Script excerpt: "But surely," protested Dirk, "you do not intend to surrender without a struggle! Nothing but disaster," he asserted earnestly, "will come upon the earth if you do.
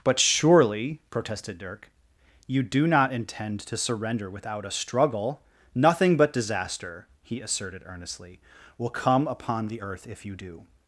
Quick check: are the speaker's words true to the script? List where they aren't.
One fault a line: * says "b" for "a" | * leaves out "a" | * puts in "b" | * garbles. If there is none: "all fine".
all fine